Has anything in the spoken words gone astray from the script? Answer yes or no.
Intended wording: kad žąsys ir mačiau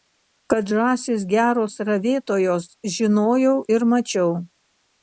yes